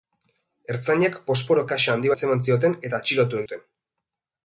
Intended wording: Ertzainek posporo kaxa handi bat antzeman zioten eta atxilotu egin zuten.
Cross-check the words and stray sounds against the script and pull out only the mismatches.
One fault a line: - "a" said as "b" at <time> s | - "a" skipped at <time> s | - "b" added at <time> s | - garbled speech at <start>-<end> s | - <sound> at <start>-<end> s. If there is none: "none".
- "bat" skipped at 2.1 s
- "egin" skipped at 3.4 s